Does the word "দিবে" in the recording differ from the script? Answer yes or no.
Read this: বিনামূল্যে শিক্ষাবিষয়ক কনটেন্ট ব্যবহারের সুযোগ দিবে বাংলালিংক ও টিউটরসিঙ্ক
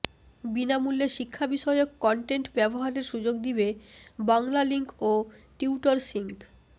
no